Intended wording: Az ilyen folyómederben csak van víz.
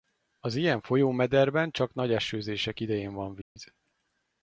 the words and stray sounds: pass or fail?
fail